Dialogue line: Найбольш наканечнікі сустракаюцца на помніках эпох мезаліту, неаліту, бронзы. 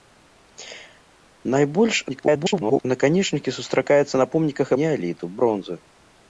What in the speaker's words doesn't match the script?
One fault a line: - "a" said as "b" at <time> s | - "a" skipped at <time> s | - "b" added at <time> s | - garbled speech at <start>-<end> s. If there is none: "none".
- garbled speech at 2.1-2.9 s
- "эпох мезаліту" skipped at 4.7 s